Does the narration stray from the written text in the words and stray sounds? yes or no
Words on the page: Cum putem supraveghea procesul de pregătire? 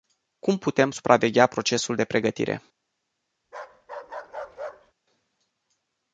yes